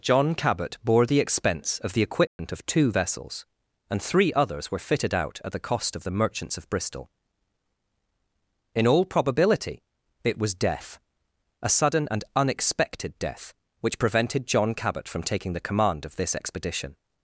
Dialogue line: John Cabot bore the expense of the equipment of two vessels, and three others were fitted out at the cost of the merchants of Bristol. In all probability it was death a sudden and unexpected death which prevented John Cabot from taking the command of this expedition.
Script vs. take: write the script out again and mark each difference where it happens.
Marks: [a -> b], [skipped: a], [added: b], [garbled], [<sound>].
John Cabot bore the expense of the equipment [dropout] of two vessels, and three others were fitted out at the cost of the merchants of Bristol. In all probability it was death a sudden and unexpected death which prevented John Cabot from taking the command of this expedition.